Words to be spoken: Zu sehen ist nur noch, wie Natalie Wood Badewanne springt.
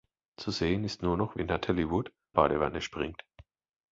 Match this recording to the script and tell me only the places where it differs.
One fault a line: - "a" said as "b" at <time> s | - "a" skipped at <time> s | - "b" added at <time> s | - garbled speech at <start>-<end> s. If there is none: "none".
none